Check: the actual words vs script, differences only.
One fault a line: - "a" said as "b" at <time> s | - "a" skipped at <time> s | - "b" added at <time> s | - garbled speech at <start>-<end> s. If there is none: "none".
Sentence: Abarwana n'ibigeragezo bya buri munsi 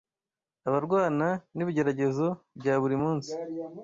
none